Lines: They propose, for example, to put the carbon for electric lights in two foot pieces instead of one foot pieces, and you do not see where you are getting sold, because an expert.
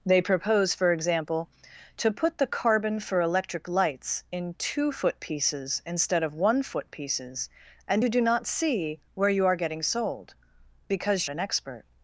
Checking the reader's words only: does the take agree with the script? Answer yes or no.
yes